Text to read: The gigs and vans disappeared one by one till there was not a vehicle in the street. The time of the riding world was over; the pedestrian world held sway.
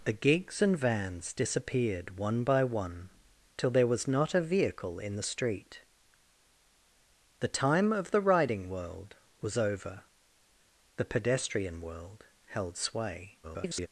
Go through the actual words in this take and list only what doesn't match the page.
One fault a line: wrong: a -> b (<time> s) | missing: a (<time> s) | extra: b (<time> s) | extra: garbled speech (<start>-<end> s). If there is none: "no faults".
extra: garbled speech (13.4-13.9 s)